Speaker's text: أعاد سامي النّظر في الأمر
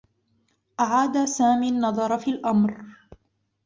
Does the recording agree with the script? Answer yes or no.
yes